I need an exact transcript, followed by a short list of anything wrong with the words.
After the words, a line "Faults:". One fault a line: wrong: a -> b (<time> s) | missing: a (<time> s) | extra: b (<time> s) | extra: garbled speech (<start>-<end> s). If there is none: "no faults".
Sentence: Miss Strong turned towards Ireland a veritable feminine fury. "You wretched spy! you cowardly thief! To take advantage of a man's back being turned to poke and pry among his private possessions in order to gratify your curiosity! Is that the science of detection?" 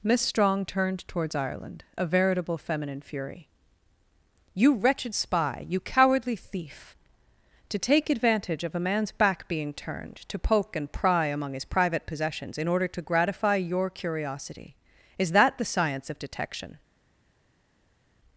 Miss Strong turned towards Ireland a veritable feminine fury. "You wretched spy! you cowardly thief! To take advantage of a man's back being turned to poke and pry among his private possessions in order to gratify your curiosity! Is that the science of detection?"
Faults:
no faults